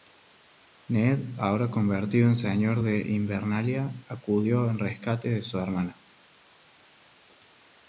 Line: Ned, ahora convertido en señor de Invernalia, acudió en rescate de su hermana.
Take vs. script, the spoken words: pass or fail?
pass